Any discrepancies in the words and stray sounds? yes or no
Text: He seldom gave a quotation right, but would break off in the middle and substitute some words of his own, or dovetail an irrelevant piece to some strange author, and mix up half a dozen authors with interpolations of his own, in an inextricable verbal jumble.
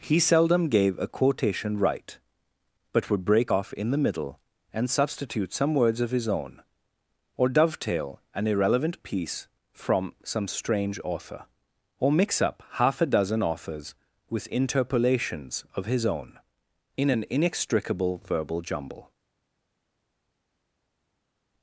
yes